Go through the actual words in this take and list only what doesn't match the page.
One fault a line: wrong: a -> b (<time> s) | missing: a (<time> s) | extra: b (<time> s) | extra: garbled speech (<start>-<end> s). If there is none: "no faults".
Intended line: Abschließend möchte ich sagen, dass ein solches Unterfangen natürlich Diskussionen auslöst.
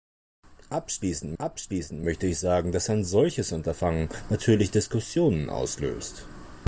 extra: abschließend (1.4 s)